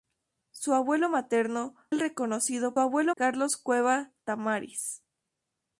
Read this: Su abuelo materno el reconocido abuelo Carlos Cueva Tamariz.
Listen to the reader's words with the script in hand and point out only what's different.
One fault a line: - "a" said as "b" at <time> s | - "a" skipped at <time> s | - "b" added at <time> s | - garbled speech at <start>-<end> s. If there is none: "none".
none